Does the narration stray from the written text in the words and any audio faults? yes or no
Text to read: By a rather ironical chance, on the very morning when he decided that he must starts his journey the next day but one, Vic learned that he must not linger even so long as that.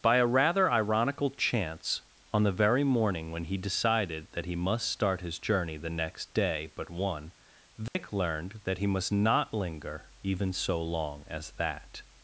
yes